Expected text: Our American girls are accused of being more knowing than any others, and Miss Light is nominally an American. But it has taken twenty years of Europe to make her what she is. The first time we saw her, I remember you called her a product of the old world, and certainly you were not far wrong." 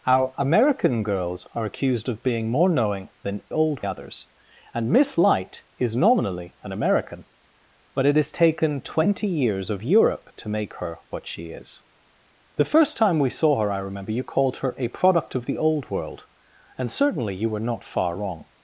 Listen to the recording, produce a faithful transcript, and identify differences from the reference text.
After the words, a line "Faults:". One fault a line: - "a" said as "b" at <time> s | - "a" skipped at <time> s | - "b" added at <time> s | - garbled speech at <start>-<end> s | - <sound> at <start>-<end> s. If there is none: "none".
Our American girls are accused of being more knowing than old others, and Miss Light is nominally an American. But it has taken twenty years of Europe to make her what she is. The first time we saw her, I remember you called her a product of the old world, and certainly you were not far wrong."
Faults:
- "any" said as "old" at 3.5 s